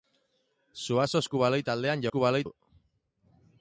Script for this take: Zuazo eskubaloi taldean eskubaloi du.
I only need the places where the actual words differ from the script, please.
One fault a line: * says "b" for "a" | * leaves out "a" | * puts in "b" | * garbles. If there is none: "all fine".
all fine